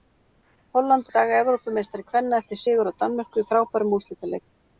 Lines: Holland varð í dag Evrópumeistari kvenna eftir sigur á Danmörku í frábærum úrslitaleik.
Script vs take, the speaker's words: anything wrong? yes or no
yes